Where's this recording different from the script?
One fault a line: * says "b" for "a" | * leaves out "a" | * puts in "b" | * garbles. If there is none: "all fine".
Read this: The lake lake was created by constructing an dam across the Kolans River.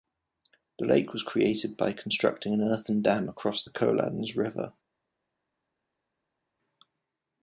* leaves out "lake"
* puts in "earthen"